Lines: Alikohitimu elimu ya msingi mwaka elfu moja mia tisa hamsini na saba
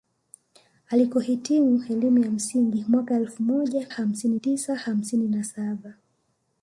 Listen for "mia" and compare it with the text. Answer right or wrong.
wrong